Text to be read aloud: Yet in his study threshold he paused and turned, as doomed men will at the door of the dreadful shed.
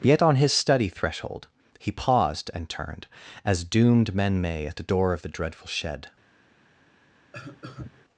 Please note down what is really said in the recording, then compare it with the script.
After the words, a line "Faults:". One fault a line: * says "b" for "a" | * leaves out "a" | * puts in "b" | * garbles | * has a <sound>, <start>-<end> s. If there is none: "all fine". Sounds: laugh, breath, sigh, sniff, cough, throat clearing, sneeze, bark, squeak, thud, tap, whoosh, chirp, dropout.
Yet on his study threshold he paused and turned, as doomed men may at the door of the dreadful shed.
Faults:
* says "on" for "in"
* says "may" for "will"
* has a cough, 7.3-8.0 s